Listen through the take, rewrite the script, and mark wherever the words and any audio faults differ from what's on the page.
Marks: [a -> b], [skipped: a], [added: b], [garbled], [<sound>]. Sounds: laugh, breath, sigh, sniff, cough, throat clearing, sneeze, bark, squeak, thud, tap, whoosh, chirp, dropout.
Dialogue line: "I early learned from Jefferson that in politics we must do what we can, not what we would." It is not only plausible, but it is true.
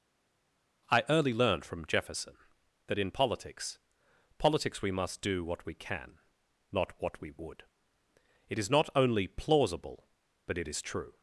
"I early learned from Jefferson that in politics [added: politics] we must do what we can, not what we would." It is not only plausible, but it is true.